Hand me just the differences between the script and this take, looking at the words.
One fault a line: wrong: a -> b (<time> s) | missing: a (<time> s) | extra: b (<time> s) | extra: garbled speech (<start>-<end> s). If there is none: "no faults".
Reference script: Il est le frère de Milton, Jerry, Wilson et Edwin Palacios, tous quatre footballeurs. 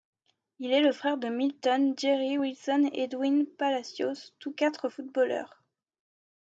no faults